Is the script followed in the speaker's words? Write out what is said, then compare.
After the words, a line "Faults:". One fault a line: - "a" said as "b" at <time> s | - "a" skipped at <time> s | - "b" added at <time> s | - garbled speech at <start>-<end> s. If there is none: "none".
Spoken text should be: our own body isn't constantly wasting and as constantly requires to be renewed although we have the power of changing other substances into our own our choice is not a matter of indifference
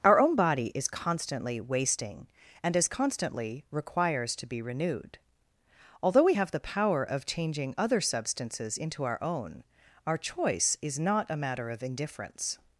our own body is constantly wasting and as constantly requires to be renewed although we have the power of changing other substances into our own our choice is not a matter of indifference
Faults:
- "isn't" said as "is" at 0.7 s